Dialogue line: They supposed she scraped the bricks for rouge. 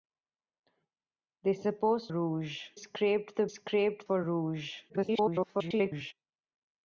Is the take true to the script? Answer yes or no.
no